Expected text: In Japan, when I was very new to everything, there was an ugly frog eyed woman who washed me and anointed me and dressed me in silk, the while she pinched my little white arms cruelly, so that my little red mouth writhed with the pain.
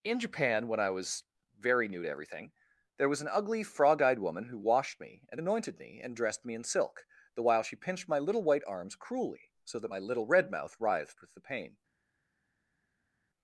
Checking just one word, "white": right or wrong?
right